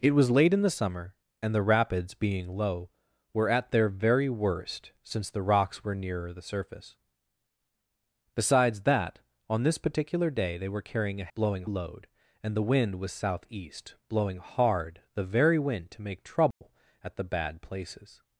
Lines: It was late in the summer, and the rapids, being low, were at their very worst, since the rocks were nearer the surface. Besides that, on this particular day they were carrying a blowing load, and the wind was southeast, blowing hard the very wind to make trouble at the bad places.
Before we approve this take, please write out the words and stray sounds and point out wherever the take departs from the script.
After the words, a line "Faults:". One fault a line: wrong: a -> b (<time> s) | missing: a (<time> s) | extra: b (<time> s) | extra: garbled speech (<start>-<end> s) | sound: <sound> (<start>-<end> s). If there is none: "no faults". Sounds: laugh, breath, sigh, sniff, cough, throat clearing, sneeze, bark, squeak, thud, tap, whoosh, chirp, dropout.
It was late in the summer, and the rapids, being low, were at their very worst, since the rocks were nearer the surface. Besides that, on this particular day they were carrying a blowing load, and the wind was southeast, blowing hard the very wind to make trouble at the bad places.
Faults:
sound: dropout (16.5-16.6 s)